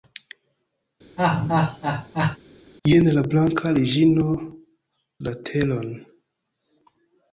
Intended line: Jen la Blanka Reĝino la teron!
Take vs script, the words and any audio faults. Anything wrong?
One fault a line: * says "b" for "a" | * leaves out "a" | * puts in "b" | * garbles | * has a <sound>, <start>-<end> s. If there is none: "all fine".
* has a laugh, 1.2-2.4 s